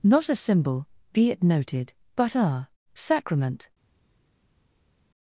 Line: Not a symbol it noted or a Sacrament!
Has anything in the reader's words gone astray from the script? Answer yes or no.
yes